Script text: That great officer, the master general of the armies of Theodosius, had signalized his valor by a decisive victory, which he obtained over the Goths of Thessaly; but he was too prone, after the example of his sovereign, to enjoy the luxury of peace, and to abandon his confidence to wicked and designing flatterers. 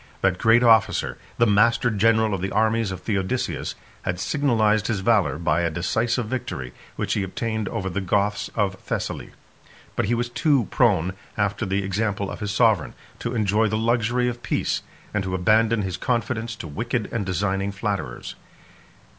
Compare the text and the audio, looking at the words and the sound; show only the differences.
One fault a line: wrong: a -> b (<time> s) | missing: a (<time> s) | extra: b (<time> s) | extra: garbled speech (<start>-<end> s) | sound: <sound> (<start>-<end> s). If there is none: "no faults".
no faults